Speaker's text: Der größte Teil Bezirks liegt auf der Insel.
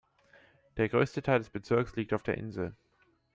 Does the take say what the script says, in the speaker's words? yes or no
no